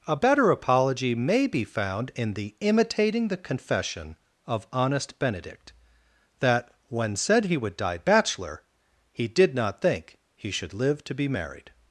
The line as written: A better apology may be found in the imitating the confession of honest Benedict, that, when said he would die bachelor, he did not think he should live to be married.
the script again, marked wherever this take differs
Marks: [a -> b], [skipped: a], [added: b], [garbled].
A better apology may be found in the imitating the confession of honest Benedict, that, when said he would die bachelor, he did not think he should live to be married.